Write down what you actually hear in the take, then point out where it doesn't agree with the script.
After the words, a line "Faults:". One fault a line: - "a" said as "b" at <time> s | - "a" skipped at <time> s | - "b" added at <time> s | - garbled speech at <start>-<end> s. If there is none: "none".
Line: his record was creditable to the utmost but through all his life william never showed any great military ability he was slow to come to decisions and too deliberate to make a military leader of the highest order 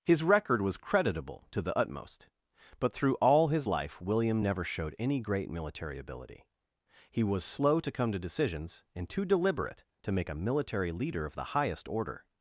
his record was creditable to the utmost but through all his life william never showed any great military ability he was slow to come to decisions and too deliberate to make a military leader of the highest order
Faults:
none